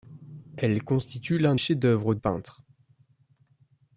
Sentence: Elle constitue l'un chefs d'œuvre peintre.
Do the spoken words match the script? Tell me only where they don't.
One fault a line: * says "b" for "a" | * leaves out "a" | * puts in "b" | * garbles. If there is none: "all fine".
all fine